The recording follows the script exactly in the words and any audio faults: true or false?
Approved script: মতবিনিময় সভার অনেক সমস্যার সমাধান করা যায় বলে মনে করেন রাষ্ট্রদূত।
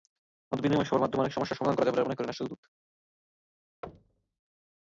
false